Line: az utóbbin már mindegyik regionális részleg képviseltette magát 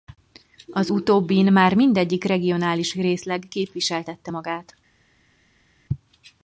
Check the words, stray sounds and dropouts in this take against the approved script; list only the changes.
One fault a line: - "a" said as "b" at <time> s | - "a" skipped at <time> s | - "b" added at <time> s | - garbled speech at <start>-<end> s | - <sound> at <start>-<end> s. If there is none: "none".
none